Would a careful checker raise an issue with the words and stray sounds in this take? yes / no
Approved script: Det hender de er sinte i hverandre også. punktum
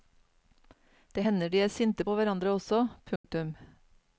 yes